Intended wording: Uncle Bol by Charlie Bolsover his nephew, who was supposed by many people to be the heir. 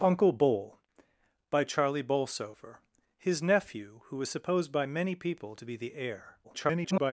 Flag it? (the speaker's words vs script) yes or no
yes